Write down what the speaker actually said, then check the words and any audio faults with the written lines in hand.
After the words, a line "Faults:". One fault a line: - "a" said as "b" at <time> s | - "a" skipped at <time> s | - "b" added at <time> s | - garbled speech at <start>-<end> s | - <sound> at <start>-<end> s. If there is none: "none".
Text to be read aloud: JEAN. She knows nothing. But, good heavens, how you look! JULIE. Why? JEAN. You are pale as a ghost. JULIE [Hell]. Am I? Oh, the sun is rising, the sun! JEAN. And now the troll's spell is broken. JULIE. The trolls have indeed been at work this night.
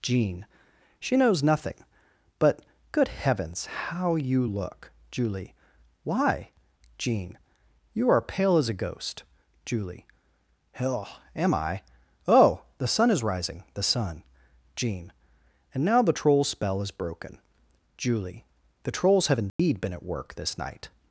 JEAN. She knows nothing. But, good heavens, how you look! JULIE. Why? JEAN. You are pale as a ghost. JULIE [Hell]. Am I? Oh, the sun is rising, the sun! JEAN. And now the troll's spell is broken. JULIE. The trolls have indeed been at work this night.
Faults:
- dropout at 19.5-19.6 s